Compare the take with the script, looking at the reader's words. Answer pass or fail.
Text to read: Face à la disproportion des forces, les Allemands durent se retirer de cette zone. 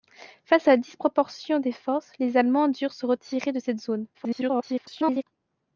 fail